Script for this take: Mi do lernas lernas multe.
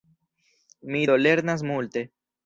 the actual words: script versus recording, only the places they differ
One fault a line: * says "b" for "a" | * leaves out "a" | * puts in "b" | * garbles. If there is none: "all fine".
* leaves out "lernas"